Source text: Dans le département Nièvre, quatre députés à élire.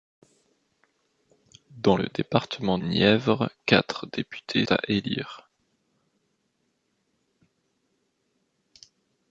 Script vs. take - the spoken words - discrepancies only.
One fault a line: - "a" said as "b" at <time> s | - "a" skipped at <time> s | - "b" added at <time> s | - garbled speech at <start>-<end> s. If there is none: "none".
none